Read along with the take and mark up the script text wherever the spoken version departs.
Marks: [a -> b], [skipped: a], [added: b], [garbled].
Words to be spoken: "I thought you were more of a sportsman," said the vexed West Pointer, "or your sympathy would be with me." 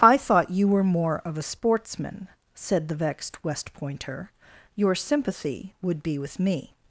"I thought you were more of a sportsman," said the vexed West Pointer, [skipped: "or] your sympathy would be with me."